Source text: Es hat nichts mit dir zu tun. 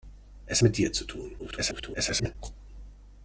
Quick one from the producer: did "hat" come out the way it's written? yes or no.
no